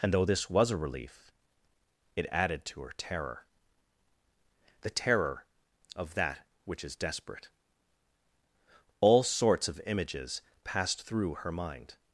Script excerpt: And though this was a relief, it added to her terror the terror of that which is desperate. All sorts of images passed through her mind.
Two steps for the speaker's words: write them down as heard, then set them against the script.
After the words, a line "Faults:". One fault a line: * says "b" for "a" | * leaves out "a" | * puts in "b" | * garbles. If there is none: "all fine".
And though this was a relief, it added to her terror the terror of that which is desperate. All sorts of images passed through her mind.
Faults:
all fine